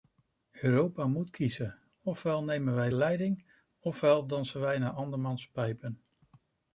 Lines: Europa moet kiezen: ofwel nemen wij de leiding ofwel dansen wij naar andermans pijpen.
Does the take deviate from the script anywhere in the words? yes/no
no